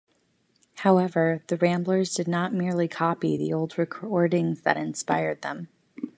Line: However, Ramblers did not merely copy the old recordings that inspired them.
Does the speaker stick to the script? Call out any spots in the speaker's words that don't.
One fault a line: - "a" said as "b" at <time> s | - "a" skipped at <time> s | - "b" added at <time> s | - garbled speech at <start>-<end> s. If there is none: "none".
- "the" added at 1.5 s